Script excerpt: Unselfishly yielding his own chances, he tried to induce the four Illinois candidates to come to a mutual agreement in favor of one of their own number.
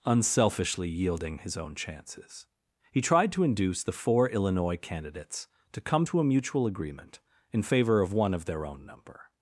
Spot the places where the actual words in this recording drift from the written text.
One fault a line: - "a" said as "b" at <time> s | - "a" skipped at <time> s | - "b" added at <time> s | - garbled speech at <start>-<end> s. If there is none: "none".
none